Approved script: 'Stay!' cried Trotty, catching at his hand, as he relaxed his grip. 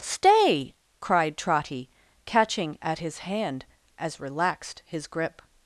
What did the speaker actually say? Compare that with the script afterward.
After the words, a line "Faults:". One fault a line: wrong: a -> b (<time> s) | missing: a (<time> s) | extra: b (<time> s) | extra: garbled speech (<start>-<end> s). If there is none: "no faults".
'Stay!' cried Trotty, catching at his hand, as relaxed his grip.
Faults:
missing: he (4.2 s)